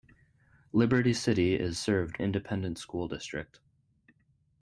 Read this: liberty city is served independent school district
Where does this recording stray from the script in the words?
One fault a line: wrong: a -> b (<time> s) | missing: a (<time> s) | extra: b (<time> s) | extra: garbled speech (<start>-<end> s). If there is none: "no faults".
no faults